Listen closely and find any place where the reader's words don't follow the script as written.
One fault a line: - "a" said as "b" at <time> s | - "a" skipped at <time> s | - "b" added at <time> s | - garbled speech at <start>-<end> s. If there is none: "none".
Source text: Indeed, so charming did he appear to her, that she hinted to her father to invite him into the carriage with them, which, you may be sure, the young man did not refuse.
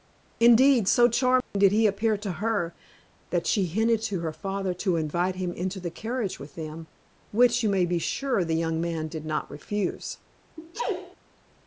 none